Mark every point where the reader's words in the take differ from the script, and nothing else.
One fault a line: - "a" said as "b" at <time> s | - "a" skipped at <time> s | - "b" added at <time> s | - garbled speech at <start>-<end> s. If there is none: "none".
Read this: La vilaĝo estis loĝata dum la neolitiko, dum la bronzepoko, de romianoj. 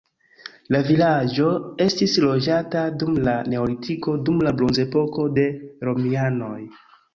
none